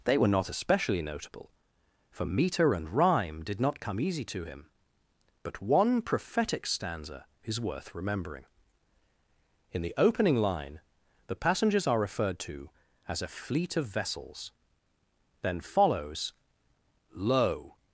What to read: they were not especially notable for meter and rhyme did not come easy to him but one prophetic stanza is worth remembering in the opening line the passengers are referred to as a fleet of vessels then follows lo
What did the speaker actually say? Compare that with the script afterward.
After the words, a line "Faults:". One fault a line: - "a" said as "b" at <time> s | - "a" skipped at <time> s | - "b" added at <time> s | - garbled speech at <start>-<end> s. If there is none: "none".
they were not especially notable for meter and rhyme did not come easy to him but one prophetic stanza is worth remembering in the opening line the passengers are referred to as a fleet of vessels then follows lo
Faults:
none